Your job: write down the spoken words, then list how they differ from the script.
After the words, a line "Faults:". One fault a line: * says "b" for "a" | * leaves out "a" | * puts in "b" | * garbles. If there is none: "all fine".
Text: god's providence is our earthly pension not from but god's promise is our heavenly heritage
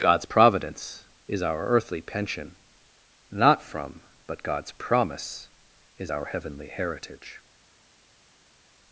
god's providence is our earthly pension not from but god's promise is our heavenly heritage
Faults:
all fine